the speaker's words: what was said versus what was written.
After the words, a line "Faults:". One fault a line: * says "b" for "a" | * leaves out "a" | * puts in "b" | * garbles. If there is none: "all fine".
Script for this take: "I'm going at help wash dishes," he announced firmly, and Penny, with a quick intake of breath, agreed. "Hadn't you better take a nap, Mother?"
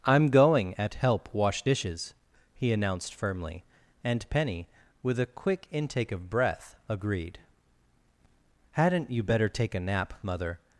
"I'm going at help wash dishes," he announced firmly, and Penny, with a quick intake of breath, agreed. "Hadn't you better take a nap, Mother?"
Faults:
all fine